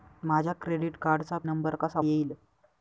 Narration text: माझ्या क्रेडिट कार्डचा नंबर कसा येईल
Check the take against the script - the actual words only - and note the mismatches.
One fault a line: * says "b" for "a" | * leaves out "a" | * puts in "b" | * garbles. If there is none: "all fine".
all fine